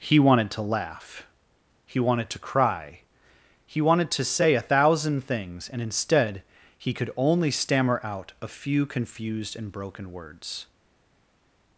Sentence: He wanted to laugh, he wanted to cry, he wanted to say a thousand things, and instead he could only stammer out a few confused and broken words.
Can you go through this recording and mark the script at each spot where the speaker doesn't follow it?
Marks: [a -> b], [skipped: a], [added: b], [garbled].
He wanted to laugh, he wanted to cry, he wanted to say a thousand things, and instead he could only stammer out a few confused and broken words.